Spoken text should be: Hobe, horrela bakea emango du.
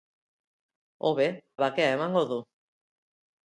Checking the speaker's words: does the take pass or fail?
fail